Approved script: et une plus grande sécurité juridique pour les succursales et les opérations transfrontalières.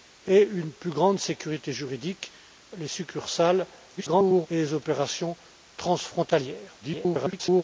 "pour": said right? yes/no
no